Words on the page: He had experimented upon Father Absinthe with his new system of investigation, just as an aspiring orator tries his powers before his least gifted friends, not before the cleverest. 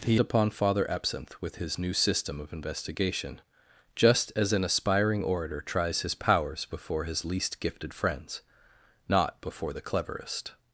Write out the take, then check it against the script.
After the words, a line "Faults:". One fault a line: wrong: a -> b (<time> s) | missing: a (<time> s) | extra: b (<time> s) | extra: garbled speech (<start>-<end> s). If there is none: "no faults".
He upon Father Absinthe with his new system of investigation, just as an aspiring orator tries his powers before his least gifted friends, not before the cleverest.
Faults:
missing: had experimented (0.2 s)